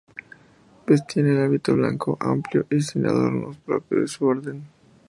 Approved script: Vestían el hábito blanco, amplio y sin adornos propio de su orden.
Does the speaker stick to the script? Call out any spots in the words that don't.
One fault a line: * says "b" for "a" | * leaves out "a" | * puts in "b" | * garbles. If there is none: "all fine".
all fine